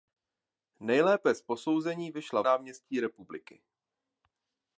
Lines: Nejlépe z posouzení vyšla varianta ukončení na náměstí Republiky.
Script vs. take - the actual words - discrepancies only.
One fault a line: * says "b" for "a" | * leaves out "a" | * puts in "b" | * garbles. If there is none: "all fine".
* leaves out "varianta ukončení na"